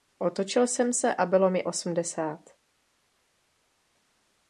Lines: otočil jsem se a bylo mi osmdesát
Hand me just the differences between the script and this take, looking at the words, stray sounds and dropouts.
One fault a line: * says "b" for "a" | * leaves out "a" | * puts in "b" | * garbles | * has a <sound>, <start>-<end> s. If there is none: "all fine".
all fine